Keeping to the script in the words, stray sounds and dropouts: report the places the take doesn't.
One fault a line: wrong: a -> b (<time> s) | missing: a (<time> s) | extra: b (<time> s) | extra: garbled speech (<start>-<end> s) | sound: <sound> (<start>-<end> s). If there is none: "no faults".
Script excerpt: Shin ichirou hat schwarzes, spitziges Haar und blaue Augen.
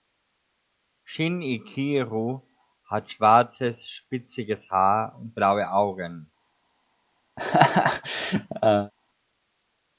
sound: laugh (7.4-8.9 s)